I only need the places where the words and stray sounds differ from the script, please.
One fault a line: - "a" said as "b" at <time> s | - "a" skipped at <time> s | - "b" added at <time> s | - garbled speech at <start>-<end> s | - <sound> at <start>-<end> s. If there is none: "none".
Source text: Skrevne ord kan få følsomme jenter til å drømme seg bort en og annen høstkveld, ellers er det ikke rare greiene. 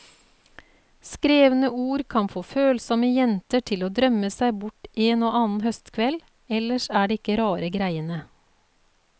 none